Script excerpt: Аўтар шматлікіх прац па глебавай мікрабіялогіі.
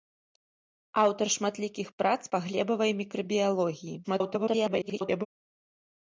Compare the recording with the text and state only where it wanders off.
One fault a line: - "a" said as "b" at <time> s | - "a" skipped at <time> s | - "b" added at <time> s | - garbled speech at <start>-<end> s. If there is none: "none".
- garbled speech at 4.0-5.3 s